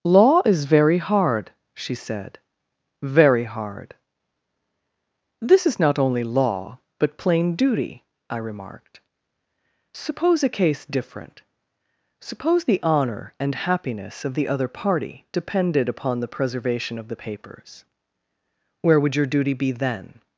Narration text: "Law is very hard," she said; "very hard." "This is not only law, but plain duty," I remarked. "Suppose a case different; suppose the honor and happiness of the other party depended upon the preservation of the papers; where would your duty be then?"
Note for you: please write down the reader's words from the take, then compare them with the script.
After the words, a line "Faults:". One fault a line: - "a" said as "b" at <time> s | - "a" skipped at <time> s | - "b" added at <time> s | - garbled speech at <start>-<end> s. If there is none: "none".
"Law is very hard," she said; "very hard." "This is not only law, but plain duty," I remarked. "Suppose a case different; suppose the honor and happiness of the other party depended upon the preservation of the papers; where would your duty be then?"
Faults:
none